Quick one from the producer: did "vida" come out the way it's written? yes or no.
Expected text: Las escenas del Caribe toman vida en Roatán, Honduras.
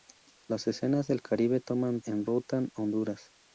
no